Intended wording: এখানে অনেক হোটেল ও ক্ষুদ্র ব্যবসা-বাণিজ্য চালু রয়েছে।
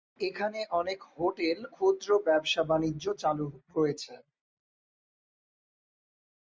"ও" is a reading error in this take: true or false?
true